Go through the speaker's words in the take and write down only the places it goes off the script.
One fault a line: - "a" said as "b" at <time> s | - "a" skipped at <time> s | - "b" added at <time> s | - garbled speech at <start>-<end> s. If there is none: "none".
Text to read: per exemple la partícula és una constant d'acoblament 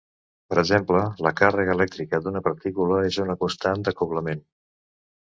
- "càrrega elèctrica d'una" added at 1.4 s